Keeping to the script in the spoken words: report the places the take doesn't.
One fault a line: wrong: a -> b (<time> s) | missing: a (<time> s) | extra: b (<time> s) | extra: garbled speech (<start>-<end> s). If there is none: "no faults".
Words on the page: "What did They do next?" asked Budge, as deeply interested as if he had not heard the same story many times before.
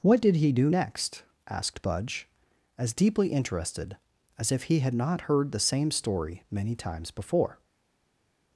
wrong: They -> He (0.3 s)